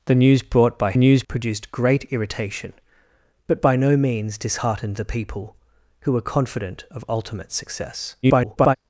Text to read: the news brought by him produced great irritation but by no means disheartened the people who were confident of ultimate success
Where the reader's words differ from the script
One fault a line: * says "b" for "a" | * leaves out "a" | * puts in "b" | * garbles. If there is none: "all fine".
* says "news" for "him"
* garbles